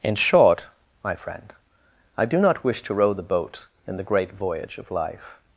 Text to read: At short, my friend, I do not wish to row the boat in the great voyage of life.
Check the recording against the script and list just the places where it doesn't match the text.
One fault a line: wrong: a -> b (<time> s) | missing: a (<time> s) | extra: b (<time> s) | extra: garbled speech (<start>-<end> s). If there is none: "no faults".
wrong: At -> In (0.0 s)